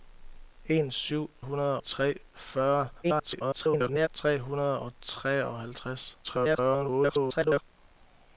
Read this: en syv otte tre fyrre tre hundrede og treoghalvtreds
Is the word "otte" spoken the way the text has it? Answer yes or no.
no